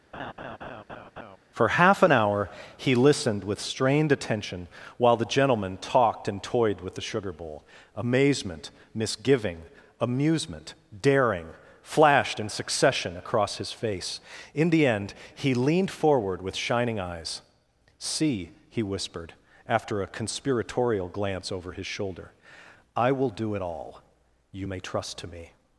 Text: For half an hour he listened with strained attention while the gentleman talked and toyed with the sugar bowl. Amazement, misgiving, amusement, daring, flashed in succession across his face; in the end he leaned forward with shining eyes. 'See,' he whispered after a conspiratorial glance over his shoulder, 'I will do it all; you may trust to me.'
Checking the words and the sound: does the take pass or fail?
fail